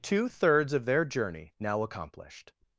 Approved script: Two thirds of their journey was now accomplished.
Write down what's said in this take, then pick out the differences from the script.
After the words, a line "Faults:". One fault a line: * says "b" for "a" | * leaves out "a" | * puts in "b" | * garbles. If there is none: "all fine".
Two thirds of their journey now accomplished.
Faults:
* leaves out "was"